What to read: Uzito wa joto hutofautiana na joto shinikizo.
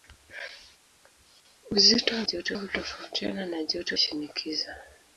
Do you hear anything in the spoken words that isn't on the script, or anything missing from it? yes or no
no